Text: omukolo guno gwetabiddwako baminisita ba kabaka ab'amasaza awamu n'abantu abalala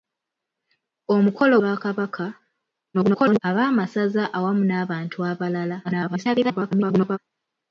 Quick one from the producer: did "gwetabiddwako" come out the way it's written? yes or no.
no